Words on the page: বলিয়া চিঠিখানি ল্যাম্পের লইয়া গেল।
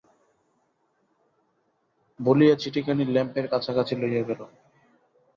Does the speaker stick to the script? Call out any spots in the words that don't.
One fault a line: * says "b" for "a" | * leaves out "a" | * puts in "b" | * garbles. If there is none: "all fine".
* puts in "কাছাকাছি"